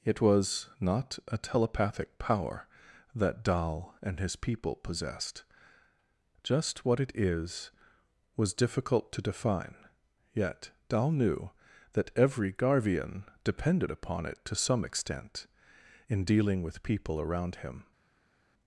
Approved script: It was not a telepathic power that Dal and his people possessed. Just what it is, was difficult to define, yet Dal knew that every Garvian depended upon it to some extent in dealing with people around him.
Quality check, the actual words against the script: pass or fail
pass